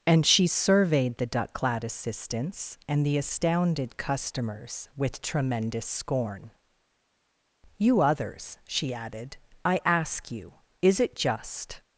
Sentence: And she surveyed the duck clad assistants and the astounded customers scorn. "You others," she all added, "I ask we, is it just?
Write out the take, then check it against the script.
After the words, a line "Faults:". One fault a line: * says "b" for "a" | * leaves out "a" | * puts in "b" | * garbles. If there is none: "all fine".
And she surveyed the duck clad assistants and the astounded customers with tremendous scorn. "You others," she added, "I ask you, is it just?
Faults:
* puts in "with tremendous"
* leaves out "all"
* says "you" for "we"